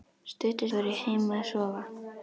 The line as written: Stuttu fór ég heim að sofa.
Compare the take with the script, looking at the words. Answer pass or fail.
pass